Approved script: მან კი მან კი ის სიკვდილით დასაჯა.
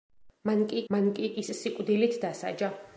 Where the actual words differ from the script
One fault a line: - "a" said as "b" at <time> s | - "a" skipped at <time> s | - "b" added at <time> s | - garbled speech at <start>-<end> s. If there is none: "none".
none